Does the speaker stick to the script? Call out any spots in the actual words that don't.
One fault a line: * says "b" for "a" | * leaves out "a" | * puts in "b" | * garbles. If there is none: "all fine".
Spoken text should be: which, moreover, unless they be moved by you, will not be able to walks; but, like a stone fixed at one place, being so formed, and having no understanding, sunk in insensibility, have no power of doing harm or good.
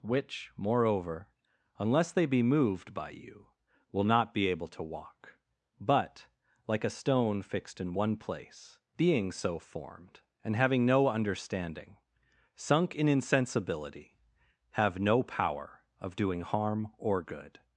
* says "walk" for "walks"
* says "in" for "at"